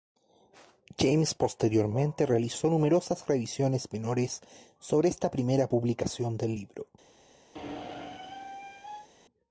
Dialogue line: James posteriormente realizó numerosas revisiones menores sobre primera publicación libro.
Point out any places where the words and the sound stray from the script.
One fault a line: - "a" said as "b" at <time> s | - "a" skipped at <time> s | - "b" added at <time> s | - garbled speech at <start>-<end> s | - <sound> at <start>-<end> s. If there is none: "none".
- "esta" added at 5.1 s
- "del" added at 6.4 s
- squeak at 7.5-9.1 s